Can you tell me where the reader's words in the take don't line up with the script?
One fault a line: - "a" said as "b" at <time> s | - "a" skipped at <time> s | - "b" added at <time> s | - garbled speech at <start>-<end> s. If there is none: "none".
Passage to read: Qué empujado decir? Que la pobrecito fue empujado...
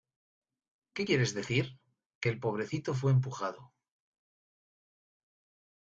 - "empujado" said as "quieres" at 1.0 s
- "la" said as "el" at 2.3 s